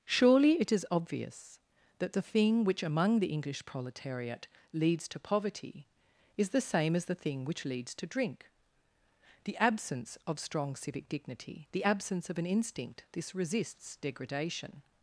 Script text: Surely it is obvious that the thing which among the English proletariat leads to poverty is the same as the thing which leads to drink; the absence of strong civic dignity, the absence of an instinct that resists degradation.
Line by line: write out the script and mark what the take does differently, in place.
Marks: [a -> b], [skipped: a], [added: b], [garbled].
Surely it is obvious that the thing which among the English proletariat leads to poverty is the same as the thing which leads to drink; the absence of strong civic dignity, the absence of an instinct [that -> this] resists degradation.